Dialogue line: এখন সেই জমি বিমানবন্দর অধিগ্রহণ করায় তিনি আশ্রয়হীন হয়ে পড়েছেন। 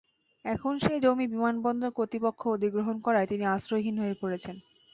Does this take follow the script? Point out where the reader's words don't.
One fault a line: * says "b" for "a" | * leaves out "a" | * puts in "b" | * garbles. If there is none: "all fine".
* puts in "কর্তৃপক্ষ"